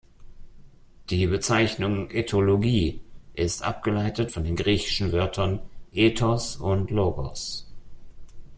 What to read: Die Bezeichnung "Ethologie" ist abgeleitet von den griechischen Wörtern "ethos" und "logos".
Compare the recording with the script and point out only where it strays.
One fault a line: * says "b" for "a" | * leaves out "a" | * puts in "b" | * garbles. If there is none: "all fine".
all fine